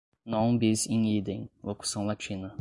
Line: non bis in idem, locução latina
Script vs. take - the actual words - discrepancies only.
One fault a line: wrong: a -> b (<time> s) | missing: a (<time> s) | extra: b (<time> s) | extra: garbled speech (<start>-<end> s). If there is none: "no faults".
no faults